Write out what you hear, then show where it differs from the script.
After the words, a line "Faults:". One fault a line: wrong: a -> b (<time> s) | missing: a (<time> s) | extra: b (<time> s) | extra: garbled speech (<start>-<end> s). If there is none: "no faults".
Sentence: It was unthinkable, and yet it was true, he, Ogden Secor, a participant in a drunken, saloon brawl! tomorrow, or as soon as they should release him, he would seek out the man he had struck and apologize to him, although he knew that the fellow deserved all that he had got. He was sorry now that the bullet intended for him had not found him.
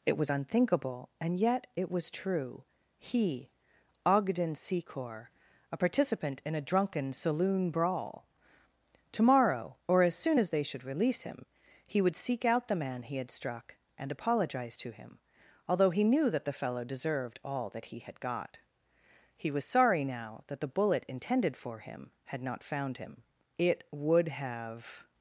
It was unthinkable, and yet it was true, he, Ogden Secor, a participant in a drunken, saloon brawl! tomorrow, or as soon as they should release him, he would seek out the man he had struck and apologize to him, although he knew that the fellow deserved all that he had got. He was sorry now that the bullet intended for him had not found him. It would have
Faults:
extra: It would have (23.6 s)